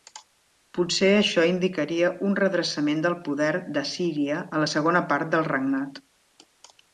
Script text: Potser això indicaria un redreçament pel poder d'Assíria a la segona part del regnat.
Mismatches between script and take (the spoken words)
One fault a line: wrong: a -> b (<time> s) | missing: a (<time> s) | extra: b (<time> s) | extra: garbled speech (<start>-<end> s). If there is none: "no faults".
wrong: pel -> del (3.1 s)